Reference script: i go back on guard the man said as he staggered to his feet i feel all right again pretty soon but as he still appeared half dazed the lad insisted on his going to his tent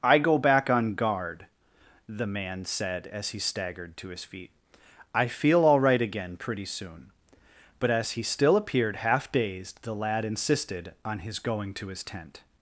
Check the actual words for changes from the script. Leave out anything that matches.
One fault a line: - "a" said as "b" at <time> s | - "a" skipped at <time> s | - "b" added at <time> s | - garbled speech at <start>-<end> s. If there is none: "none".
none